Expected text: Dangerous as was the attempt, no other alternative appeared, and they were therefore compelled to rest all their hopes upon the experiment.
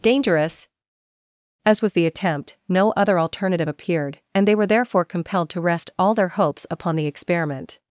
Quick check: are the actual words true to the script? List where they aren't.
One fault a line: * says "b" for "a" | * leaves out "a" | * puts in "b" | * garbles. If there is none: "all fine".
all fine